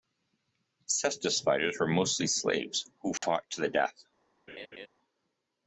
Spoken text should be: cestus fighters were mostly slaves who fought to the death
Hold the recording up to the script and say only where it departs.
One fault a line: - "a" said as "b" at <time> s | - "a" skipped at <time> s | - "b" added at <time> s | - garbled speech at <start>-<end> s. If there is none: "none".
none